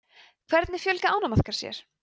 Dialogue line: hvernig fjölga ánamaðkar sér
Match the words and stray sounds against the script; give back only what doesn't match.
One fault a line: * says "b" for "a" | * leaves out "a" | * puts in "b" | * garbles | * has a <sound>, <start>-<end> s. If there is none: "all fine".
all fine